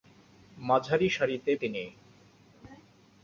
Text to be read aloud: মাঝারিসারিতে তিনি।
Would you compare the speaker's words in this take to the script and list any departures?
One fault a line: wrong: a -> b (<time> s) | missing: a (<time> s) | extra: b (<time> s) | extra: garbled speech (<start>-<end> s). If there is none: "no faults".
no faults